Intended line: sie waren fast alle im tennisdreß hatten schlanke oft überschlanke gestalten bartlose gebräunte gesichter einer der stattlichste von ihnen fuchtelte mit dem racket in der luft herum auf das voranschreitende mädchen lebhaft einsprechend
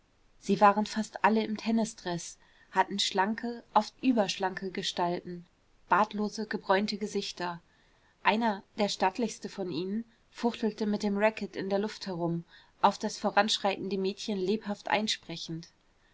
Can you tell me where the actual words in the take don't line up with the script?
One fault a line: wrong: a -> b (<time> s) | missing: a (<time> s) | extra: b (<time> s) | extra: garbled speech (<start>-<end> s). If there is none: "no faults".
no faults